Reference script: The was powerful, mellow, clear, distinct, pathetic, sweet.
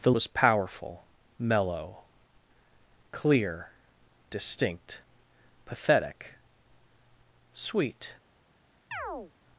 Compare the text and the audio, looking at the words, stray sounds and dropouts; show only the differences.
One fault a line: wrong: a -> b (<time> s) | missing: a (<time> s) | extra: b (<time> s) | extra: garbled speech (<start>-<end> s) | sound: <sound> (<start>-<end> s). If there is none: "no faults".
sound: chirp (8.9-9.3 s)